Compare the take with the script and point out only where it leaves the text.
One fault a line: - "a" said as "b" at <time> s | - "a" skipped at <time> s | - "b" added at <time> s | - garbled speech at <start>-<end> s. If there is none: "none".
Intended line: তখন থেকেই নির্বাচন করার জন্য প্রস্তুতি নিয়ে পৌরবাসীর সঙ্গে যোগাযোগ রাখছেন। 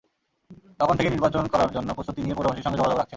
none